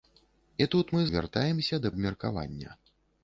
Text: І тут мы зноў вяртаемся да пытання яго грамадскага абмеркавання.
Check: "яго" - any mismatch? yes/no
yes